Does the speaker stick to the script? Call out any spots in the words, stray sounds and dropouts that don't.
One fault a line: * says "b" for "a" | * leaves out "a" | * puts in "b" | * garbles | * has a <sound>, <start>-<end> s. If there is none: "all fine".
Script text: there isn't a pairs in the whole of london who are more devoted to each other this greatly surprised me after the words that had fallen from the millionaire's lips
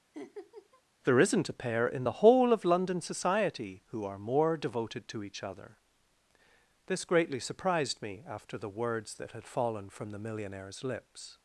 * has a laugh, 0.1-0.8 s
* says "pair" for "pairs"
* puts in "society"